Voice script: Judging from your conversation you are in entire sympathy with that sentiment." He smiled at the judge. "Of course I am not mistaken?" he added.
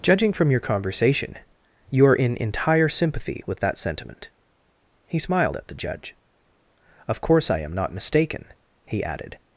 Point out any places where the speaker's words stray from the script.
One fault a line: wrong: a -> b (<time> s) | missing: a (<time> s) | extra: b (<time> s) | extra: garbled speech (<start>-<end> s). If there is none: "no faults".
no faults